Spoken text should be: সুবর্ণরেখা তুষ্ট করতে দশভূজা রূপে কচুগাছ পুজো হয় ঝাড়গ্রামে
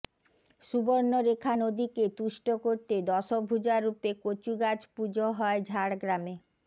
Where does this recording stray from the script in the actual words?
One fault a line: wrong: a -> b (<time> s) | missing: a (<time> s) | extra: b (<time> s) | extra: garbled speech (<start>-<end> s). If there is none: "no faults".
extra: নদীকে (1.6 s)